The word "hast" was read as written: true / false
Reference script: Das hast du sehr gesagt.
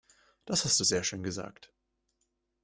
true